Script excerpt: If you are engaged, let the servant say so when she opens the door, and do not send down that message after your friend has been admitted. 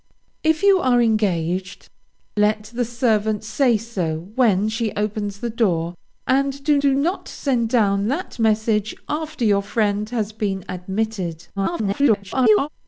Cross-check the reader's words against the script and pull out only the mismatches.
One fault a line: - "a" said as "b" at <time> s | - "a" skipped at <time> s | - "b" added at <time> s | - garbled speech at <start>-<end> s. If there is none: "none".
- "do" added at 6.8 s
- garbled speech at 11.6-12.7 s